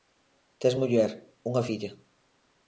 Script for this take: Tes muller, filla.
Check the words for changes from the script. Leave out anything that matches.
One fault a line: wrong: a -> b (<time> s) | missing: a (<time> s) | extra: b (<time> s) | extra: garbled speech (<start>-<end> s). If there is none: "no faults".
extra: unha (1.5 s)